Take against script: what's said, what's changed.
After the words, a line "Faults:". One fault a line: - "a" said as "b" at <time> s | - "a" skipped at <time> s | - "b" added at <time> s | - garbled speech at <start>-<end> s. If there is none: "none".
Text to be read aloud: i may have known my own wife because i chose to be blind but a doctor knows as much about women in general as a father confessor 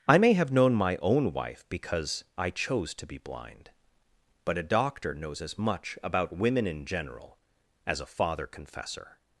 i may have known my own wife because i chose to be blind but a doctor knows as much about women in general as a father confessor
Faults:
none